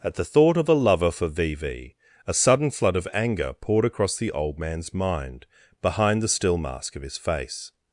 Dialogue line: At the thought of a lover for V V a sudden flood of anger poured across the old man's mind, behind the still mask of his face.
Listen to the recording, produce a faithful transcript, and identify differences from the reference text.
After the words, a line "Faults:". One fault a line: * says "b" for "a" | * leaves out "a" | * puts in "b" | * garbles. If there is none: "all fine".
At the thought of a lover for V V a sudden flood of anger poured across the old man's mind, behind the still mask of his face.
Faults:
all fine